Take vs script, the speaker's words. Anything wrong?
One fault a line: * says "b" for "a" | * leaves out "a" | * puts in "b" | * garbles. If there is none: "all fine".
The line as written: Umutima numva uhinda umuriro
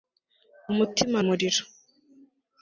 * leaves out "numva uhinda"